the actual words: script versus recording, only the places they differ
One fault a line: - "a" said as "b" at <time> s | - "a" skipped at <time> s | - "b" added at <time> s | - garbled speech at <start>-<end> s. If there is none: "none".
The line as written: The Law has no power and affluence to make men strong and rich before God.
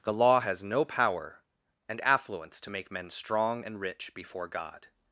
none